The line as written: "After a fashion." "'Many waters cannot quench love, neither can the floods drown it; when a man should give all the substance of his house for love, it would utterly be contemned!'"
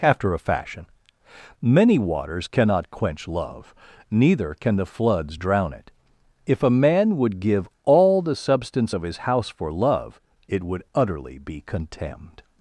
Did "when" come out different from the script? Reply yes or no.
yes